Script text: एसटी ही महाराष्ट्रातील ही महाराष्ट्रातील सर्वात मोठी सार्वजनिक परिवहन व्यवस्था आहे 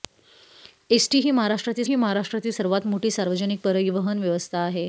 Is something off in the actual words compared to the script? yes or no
no